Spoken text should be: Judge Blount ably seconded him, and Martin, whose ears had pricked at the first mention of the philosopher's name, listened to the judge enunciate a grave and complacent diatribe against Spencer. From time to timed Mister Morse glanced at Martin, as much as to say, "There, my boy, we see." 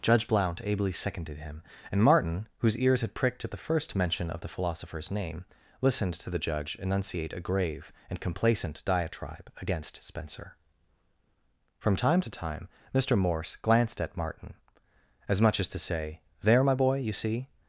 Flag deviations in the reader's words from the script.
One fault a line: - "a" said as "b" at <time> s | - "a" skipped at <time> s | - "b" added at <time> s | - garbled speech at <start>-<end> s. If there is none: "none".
- "timed" said as "time" at 12.3 s
- "we" said as "you" at 17.0 s